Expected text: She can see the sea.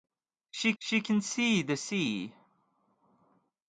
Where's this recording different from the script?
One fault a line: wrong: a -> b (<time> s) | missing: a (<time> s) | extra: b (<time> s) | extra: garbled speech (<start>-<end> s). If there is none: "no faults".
extra: she (0.8 s)